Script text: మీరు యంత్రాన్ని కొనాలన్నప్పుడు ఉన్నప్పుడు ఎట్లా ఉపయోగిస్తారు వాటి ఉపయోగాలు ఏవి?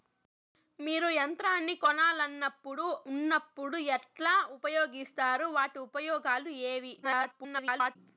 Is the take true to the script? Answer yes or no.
no